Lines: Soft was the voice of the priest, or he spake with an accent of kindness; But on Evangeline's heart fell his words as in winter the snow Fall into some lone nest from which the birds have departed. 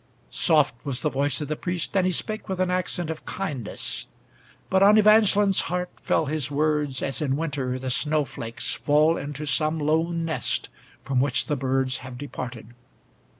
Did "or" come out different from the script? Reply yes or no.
yes